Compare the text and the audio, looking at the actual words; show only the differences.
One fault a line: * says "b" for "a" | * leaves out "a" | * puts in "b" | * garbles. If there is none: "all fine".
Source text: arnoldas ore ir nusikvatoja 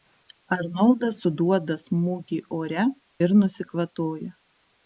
* puts in "suduoda smūgį"